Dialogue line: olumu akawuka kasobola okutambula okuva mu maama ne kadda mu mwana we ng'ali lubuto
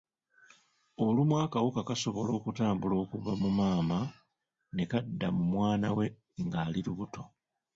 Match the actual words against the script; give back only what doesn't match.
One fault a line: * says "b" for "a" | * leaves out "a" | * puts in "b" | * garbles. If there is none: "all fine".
all fine